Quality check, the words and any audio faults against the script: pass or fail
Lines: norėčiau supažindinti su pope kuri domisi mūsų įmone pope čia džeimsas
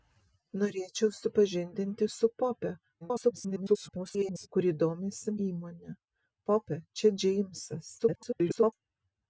fail